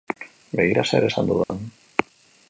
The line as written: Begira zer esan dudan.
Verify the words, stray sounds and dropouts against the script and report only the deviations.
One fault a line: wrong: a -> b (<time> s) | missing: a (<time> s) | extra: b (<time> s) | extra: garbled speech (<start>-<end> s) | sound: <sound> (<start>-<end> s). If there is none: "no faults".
sound: dropout (1.4-1.5 s)